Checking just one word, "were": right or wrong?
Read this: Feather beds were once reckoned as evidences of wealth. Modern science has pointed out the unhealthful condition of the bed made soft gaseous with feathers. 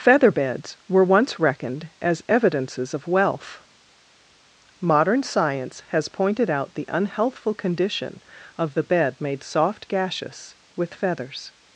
right